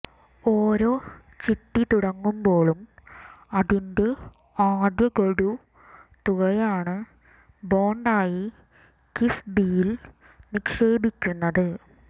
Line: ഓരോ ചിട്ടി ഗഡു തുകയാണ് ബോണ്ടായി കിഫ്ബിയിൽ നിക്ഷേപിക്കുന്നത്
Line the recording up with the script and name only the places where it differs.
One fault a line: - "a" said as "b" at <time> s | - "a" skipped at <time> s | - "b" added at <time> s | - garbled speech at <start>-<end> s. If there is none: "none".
- "തുടങ്ങുമ്പോഴും അതിന്റെ ആദ്യ" added at 1.8 s